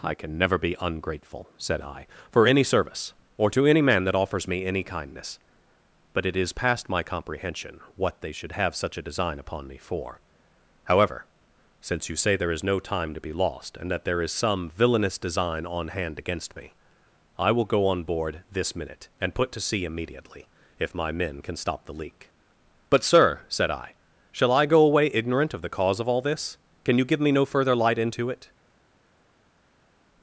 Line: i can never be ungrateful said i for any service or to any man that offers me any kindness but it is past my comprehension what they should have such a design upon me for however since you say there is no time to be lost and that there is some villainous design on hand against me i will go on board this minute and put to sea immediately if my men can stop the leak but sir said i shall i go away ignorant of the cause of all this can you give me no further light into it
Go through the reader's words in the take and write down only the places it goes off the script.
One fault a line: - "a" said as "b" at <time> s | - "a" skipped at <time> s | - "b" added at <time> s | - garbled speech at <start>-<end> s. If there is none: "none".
none